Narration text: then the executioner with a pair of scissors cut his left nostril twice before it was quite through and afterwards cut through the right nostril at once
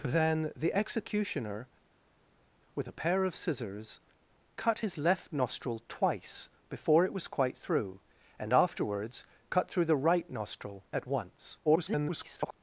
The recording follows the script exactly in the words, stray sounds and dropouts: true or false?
false